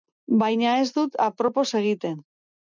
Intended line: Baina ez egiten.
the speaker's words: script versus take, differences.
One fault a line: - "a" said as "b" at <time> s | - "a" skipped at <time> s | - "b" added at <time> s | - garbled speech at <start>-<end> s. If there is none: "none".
- "dut apropos" added at 0.9 s